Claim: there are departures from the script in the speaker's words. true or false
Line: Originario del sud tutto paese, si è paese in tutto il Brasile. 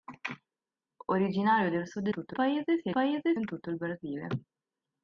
false